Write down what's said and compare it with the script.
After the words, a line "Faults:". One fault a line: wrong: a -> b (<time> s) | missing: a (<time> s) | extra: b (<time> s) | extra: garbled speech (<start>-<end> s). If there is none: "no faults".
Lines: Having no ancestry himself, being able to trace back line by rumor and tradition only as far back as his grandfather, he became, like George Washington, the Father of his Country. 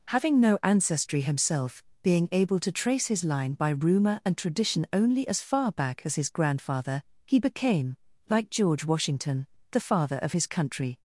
Having no ancestry himself, being able to trace his line by rumor and tradition only as far back as his grandfather, he became, like George Washington, the Father of his Country.
Faults:
wrong: back -> his (3.1 s)